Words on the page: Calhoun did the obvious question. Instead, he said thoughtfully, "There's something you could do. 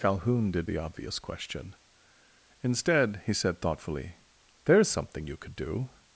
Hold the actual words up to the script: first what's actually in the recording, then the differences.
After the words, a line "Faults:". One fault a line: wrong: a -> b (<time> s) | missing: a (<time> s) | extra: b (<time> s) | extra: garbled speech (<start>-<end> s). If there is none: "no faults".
Calhoun did the obvious question. Instead, he said thoughtfully, "There's something you could do.
Faults:
no faults